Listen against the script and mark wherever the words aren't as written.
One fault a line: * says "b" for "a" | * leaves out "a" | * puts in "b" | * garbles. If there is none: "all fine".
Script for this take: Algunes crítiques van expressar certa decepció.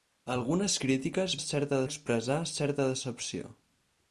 * says "certa" for "van"